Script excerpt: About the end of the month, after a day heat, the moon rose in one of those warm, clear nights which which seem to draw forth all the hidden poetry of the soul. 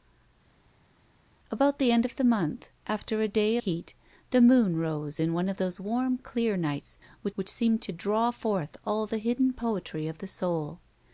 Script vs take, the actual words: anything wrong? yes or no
no